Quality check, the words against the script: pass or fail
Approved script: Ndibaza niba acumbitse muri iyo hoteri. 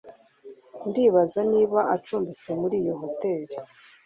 pass